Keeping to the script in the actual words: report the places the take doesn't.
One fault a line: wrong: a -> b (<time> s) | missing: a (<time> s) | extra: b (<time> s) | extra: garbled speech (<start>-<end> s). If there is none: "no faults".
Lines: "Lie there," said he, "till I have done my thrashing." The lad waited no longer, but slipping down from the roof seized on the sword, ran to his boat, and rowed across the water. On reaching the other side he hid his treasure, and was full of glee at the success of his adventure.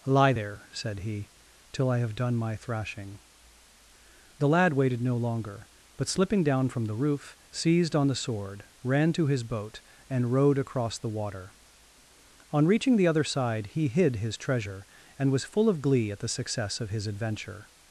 no faults